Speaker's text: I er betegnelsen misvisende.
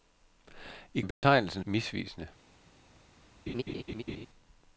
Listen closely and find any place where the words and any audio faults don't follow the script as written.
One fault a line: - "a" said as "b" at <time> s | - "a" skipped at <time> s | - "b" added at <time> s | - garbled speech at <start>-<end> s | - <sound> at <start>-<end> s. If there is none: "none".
- dropout at 1.1-1.2 s
- laugh at 3.5-4.3 s